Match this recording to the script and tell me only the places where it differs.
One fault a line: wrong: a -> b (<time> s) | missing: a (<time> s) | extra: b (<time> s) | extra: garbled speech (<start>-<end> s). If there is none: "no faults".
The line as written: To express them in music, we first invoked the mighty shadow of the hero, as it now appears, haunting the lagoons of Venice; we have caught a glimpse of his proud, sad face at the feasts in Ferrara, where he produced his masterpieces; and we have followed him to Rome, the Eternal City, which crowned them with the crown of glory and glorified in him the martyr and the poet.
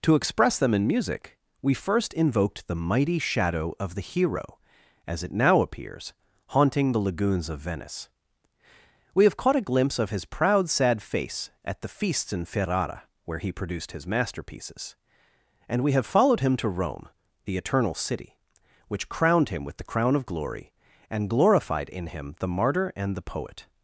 wrong: them -> him (19.5 s)